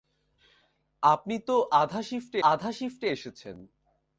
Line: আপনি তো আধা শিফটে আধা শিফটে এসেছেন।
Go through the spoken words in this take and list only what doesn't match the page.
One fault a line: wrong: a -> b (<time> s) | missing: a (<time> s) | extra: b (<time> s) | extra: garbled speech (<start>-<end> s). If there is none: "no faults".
no faults